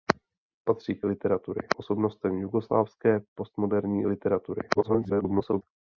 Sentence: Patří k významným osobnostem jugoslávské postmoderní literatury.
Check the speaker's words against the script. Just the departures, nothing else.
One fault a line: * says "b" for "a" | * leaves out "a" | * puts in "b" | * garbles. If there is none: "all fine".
* says "literatury" for "významným"
* garbles